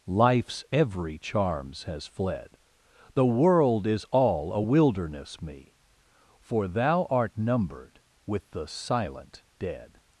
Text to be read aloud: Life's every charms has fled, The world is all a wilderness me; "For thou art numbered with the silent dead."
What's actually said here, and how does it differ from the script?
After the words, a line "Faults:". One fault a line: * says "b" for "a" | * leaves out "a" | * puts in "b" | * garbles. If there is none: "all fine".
Life's every charms has fled, The world is all a wilderness me; "For thou art numbered with the silent dead."
Faults:
all fine